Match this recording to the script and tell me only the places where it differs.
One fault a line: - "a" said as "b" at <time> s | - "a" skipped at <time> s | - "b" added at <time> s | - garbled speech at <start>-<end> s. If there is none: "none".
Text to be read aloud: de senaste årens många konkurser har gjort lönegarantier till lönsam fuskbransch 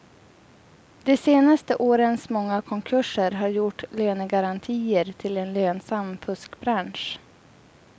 - "en" added at 5.4 s